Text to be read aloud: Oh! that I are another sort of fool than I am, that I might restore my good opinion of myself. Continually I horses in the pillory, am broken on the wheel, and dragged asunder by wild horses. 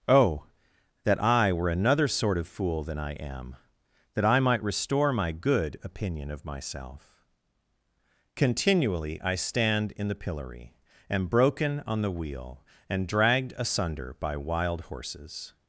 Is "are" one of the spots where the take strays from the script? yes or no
yes